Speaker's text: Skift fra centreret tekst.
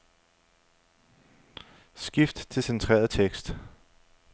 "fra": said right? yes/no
no